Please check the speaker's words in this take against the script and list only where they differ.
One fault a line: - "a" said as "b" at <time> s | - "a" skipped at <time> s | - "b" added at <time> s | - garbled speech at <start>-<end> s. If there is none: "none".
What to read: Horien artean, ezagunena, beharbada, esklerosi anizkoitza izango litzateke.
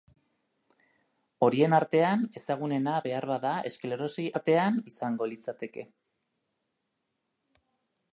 - "anizkoitza" said as "artean" at 4.3 s